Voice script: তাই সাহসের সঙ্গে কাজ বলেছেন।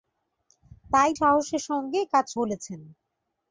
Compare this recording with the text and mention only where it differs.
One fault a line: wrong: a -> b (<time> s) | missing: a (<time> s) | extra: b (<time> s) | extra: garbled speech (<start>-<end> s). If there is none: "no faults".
no faults